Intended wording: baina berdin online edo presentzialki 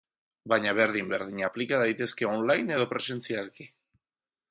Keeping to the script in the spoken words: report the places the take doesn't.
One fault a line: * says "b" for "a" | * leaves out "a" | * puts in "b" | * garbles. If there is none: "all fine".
* puts in "berdin aplika daitezke"